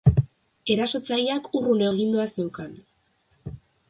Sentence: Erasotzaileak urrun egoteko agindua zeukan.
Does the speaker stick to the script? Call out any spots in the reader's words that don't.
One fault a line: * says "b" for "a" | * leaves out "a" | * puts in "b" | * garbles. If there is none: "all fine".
* leaves out "egoteko"